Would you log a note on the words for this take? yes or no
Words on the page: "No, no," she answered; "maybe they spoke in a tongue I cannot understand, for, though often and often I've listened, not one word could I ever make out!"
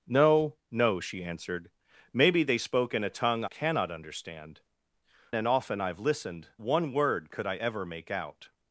yes